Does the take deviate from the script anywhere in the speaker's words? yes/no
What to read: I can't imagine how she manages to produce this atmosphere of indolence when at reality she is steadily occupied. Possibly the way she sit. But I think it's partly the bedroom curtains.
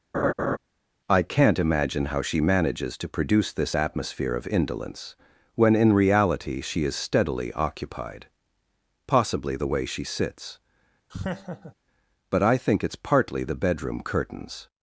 yes